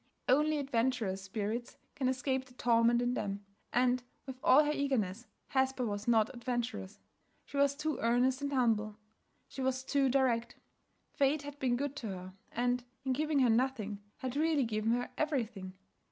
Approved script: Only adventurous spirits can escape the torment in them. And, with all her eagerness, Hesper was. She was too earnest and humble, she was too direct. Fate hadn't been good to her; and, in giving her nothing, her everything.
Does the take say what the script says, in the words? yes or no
no